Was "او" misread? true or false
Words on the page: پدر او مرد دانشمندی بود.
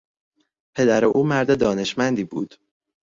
false